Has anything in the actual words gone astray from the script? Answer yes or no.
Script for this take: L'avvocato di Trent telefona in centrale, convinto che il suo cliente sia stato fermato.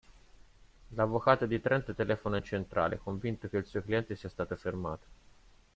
no